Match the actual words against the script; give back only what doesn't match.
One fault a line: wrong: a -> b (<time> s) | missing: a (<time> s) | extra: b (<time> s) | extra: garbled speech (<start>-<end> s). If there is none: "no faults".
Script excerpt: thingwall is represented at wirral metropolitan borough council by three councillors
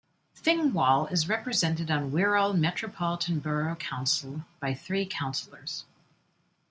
wrong: at -> on (1.9 s)